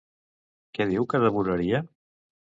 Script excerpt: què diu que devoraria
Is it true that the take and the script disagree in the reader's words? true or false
false